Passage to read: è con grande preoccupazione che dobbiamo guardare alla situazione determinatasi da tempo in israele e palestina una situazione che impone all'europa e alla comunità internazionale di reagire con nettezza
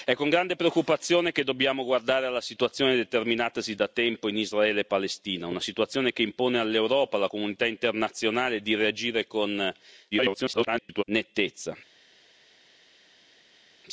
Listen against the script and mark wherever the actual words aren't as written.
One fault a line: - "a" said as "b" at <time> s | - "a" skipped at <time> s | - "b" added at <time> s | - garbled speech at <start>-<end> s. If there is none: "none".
- garbled speech at 10.1-11.0 s